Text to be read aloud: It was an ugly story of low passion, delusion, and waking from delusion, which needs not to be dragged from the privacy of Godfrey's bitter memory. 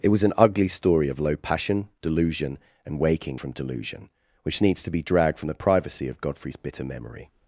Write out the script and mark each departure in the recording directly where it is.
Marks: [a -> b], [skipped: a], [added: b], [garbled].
It was an ugly story of low passion, delusion, and waking from delusion, which needs [skipped: not] to be dragged from the privacy of Godfrey's bitter memory.